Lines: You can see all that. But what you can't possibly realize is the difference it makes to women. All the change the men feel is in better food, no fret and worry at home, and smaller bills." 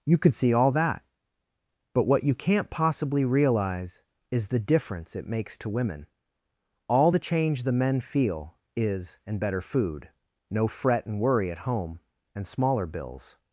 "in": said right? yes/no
no